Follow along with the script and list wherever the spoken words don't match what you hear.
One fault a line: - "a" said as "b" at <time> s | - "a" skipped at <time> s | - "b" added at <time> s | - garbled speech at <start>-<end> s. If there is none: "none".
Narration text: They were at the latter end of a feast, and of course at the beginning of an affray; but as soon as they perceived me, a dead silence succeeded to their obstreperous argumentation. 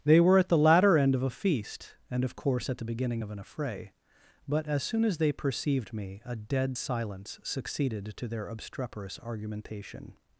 none